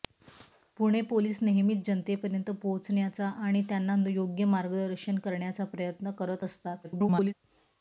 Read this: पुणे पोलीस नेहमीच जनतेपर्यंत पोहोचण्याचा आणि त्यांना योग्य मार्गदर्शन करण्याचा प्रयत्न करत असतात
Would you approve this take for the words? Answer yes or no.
no